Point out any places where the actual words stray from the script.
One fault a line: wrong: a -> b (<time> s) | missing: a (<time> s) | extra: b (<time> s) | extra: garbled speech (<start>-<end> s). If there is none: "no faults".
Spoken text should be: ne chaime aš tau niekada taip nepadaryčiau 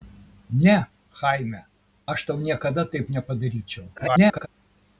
extra: garbled speech (4.0-4.5 s)